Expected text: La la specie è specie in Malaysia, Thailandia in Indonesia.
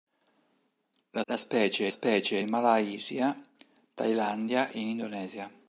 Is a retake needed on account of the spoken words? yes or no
no